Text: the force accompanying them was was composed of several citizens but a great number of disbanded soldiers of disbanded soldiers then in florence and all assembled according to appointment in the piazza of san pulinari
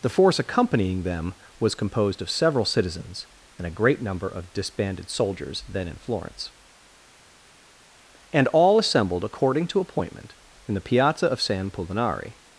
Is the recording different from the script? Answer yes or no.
yes